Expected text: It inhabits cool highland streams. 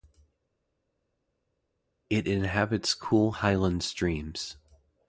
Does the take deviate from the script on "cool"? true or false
false